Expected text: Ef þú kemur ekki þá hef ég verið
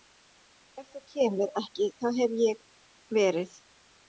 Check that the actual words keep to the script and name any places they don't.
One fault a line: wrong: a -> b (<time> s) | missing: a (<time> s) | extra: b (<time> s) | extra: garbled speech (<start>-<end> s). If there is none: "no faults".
no faults